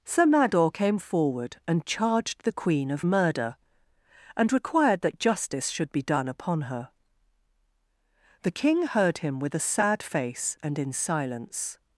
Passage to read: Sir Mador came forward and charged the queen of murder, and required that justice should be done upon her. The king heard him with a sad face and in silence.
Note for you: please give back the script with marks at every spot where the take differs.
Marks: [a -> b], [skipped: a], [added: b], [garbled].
Sir Mador came forward and charged the queen of murder, and required that justice should be done upon her. The king heard him with a sad face and in silence.